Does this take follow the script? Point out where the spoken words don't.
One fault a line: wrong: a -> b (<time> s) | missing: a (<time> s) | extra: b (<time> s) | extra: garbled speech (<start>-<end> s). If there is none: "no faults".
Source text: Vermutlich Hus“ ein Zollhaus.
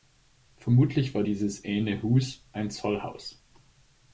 extra: war dieses ene (1.1 s)